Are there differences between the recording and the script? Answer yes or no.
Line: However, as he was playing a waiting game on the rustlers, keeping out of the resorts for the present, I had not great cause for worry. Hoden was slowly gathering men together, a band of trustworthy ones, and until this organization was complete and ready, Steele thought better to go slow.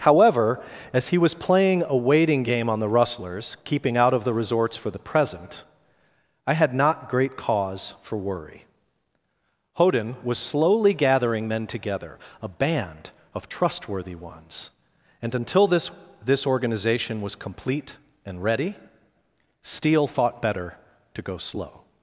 yes